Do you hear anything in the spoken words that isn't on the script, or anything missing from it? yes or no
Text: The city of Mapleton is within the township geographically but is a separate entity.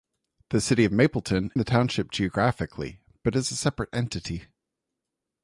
yes